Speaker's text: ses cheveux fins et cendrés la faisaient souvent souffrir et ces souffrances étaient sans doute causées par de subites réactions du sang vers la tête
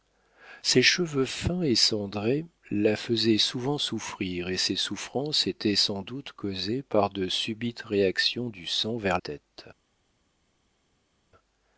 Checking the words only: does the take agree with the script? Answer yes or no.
no